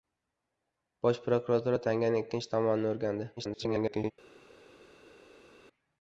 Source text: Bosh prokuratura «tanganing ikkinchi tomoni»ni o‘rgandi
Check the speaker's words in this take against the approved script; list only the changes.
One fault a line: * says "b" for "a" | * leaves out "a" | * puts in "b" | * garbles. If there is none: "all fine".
* garbles